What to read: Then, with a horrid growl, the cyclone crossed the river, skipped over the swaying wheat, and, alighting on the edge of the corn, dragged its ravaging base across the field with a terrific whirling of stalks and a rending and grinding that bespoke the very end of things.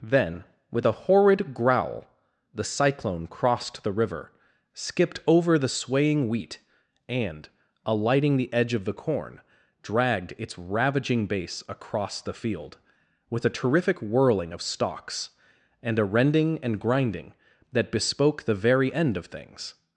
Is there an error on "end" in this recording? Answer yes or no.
no